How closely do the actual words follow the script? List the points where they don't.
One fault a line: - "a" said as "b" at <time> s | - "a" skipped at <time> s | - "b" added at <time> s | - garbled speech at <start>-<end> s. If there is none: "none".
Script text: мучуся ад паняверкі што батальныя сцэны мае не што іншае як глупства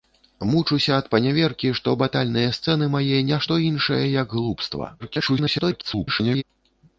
- garbled speech at 5.0-6.4 s